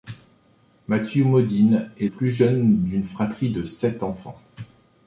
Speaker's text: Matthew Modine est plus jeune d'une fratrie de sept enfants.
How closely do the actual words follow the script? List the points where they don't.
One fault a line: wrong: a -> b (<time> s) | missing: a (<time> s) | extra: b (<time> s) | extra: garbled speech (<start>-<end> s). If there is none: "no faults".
no faults